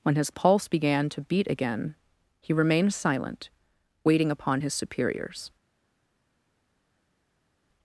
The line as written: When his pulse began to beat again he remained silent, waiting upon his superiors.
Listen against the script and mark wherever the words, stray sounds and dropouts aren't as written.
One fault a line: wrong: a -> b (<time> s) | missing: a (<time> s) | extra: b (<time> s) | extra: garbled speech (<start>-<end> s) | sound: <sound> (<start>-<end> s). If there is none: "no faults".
no faults